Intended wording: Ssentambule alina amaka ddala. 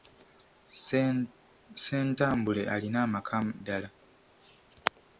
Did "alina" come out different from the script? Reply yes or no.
no